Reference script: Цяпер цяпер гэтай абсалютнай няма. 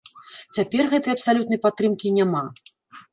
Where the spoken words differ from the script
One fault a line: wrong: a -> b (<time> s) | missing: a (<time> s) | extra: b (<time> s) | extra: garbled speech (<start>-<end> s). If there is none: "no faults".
missing: цяпер (0.9 s)
extra: падтрымкі (1.6 s)